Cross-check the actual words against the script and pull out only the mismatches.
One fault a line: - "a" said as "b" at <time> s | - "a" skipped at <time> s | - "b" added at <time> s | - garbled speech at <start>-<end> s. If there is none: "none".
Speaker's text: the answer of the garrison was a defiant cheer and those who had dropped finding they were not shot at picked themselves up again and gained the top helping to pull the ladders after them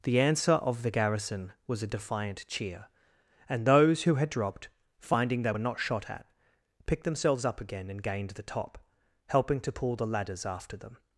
none